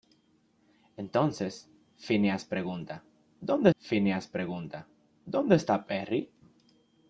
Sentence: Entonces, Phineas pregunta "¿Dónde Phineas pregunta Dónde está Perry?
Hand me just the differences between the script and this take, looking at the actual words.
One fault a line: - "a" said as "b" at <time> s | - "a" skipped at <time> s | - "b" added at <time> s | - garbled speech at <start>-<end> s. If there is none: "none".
none